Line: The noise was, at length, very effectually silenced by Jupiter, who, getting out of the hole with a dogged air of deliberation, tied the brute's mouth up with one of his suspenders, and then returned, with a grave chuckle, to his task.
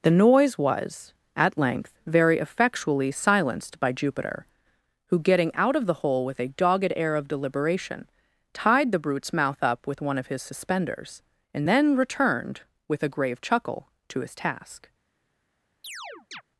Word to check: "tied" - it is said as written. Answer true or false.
true